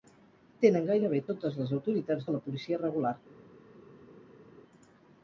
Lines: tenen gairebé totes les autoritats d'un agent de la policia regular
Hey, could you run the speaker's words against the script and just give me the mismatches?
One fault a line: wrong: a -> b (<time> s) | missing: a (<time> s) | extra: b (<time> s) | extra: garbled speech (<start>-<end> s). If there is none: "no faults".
missing: d'un agent (2.3 s)